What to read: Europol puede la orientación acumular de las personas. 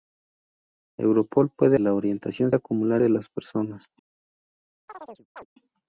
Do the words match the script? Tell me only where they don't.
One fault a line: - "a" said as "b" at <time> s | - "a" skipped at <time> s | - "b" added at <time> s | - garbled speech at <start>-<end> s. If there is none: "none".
none